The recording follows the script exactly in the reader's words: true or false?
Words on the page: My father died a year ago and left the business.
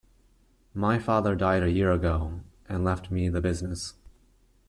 false